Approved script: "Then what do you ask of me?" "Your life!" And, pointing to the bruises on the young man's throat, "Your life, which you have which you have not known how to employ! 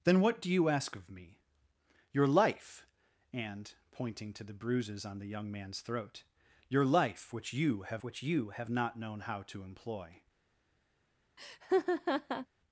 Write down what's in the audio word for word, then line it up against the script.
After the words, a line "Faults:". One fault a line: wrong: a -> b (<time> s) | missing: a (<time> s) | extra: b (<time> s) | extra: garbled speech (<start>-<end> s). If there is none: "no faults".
"Then what do you ask of me?" "Your life!" And, pointing to the bruises on the young man's throat, "Your life, which you have which you have not known how to employ!
Faults:
no faults